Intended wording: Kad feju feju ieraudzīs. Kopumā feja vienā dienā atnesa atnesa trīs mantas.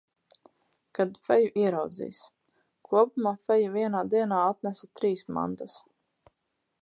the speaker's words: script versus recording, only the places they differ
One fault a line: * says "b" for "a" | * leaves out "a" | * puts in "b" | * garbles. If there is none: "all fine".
* leaves out "feju"
* leaves out "atnesa"